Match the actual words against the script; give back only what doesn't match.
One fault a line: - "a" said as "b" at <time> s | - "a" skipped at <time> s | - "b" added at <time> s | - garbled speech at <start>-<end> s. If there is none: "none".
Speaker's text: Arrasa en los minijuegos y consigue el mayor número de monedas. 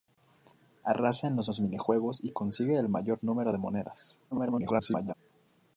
- "los" added at 1.4 s
- garbled speech at 4.3-5.1 s